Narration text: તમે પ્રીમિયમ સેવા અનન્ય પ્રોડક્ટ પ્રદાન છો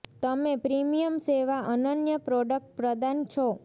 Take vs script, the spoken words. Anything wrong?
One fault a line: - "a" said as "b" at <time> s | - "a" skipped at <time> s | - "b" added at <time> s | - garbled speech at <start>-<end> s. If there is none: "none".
none